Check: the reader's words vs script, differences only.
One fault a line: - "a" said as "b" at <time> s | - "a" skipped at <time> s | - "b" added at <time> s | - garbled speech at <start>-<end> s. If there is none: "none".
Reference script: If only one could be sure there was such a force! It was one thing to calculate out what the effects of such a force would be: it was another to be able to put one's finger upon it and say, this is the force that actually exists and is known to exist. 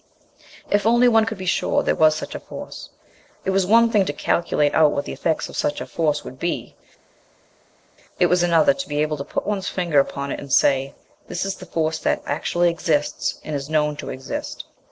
none